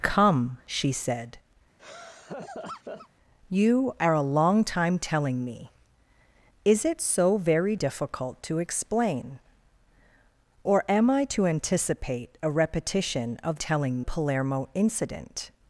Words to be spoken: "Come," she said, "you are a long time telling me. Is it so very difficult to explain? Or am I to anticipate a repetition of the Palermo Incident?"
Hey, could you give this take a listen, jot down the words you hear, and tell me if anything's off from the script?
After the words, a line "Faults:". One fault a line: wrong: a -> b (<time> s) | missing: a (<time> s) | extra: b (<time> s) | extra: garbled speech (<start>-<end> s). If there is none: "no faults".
"Come," she said, "you are a long time telling me. Is it so very difficult to explain? Or am I to anticipate a repetition of telling Palermo Incident?"
Faults:
wrong: the -> telling (13.5 s)